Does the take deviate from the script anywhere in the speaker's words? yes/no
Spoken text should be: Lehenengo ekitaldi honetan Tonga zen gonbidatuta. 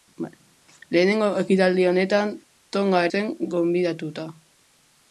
no